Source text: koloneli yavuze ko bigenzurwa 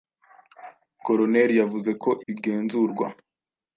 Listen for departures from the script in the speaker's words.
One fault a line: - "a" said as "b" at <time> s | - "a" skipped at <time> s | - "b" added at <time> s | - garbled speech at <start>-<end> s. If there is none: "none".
none